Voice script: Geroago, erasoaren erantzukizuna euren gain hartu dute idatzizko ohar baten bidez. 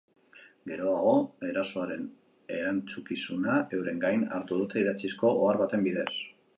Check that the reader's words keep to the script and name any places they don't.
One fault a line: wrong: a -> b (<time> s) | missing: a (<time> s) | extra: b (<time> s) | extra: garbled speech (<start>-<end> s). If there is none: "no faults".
no faults